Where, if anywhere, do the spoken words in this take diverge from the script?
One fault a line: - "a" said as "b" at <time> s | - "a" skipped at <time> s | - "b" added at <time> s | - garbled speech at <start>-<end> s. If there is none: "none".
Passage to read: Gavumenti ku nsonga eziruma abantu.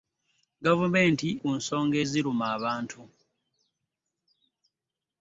none